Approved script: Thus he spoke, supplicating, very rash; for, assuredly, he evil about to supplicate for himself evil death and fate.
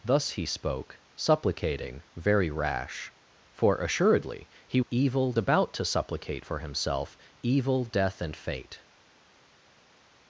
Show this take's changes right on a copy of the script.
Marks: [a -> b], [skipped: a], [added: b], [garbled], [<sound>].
Thus he spoke, supplicating, very rash; for, assuredly, he evil about to supplicate for himself evil death and fate.